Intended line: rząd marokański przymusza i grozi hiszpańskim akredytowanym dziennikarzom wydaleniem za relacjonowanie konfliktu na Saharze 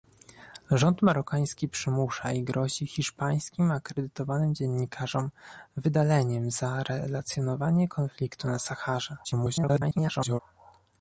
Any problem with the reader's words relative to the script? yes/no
yes